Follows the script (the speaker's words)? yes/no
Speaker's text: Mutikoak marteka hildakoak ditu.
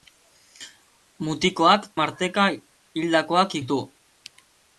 yes